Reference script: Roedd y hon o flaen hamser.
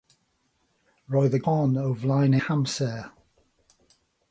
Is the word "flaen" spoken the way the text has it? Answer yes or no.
yes